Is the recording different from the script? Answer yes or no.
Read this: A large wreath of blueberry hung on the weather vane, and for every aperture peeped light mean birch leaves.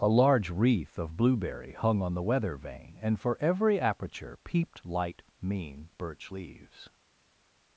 no